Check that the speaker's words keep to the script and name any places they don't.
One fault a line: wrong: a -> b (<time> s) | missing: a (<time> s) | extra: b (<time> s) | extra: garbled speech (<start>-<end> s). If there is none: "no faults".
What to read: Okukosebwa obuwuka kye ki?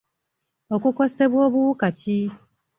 missing: kye (1.9 s)